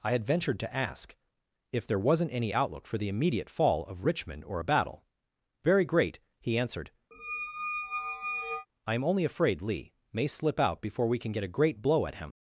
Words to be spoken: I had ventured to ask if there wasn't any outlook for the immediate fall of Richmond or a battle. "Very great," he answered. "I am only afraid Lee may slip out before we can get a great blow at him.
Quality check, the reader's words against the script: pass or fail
pass